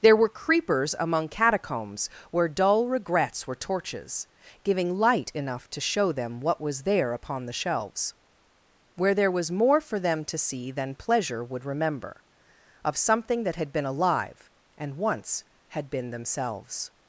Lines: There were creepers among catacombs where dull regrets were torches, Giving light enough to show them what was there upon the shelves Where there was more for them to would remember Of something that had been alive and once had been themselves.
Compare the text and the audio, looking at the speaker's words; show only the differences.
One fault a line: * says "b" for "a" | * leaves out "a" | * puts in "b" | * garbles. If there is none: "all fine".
* puts in "see than pleasure"